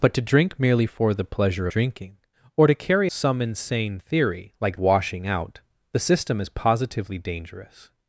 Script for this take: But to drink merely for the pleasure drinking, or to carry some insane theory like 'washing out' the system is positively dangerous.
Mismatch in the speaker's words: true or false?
false